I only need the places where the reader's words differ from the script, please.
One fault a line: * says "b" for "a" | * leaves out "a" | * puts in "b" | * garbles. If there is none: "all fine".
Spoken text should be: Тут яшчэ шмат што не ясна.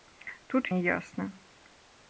* leaves out "яшчэ шмат што"